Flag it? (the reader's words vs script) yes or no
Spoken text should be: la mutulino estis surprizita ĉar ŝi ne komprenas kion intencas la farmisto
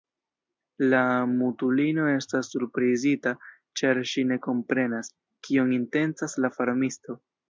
yes